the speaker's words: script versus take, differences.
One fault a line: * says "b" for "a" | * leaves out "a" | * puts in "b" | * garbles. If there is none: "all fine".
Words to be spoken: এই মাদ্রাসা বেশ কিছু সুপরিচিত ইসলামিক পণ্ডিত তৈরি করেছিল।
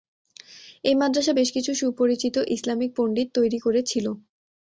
all fine